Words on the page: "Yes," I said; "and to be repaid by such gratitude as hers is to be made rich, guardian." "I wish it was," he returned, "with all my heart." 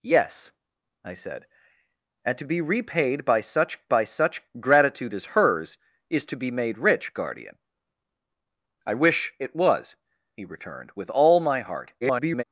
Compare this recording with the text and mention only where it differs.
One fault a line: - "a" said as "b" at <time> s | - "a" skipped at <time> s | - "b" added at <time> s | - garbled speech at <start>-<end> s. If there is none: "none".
- "by such" added at 3.9 s
- garbled speech at 12.0-12.4 s